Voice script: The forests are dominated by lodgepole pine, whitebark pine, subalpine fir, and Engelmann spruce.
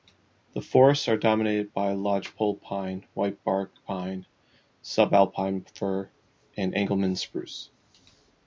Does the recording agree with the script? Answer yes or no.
yes